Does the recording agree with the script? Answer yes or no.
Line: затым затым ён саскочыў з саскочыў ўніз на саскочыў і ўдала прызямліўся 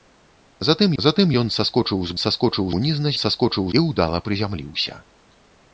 yes